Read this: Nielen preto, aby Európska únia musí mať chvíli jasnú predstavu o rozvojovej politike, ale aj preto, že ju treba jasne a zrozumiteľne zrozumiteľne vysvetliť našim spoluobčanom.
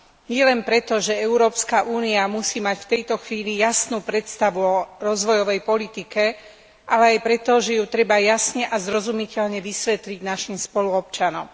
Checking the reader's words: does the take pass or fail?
fail